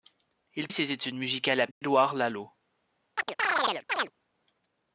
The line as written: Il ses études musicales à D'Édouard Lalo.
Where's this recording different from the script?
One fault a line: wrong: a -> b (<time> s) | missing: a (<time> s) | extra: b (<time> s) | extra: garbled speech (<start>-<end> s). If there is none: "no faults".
no faults